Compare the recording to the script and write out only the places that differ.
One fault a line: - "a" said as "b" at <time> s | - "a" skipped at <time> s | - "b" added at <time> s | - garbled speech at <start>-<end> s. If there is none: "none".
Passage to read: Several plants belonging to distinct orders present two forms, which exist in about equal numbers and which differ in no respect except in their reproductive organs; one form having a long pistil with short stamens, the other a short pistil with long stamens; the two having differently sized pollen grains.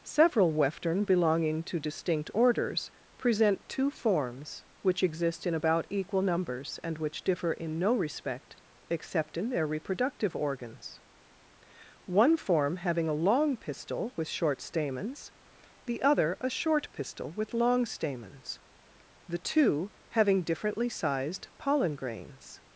- "plants" said as "weftern" at 0.5 s